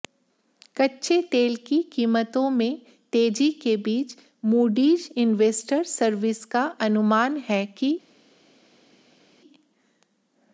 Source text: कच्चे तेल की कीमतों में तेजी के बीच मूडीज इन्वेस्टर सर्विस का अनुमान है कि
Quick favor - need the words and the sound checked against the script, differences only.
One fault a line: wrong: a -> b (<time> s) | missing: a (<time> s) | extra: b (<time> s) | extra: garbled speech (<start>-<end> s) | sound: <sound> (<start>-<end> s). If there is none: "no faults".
no faults